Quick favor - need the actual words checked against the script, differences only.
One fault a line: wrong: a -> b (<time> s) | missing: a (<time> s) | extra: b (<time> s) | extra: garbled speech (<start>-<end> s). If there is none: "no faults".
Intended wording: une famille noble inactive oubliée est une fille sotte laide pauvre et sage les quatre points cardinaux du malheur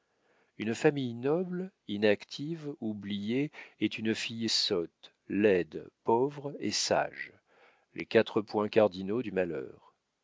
no faults